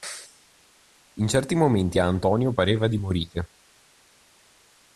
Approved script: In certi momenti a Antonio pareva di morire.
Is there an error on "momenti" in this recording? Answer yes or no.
no